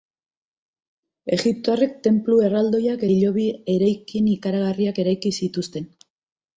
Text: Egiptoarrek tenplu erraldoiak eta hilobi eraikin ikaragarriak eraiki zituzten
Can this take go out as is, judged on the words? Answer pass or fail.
fail